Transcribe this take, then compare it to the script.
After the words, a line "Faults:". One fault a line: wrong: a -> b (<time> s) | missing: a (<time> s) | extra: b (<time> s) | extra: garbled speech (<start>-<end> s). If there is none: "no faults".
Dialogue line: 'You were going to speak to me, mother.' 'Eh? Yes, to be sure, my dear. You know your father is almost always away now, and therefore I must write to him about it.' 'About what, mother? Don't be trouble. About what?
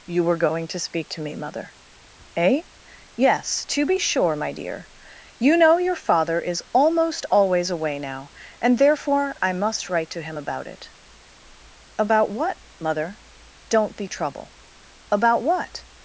'You were going to speak to me, mother.' 'Eh? Yes, to be sure, my dear. You know your father is almost always away now, and therefore I must write to him about it.' 'About what, mother? Don't be trouble. About what?
Faults:
no faults